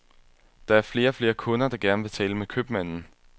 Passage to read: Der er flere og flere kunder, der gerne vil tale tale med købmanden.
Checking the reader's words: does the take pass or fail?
fail